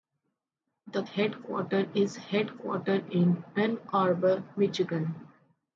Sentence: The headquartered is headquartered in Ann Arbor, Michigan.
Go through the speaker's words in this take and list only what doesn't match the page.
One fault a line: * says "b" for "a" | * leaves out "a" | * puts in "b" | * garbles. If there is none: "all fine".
all fine